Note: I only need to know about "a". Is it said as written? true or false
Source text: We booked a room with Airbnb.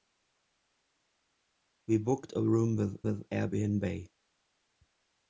true